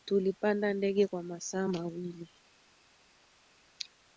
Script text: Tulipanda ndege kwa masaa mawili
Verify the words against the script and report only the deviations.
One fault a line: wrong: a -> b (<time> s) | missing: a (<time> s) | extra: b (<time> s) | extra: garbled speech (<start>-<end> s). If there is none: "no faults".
no faults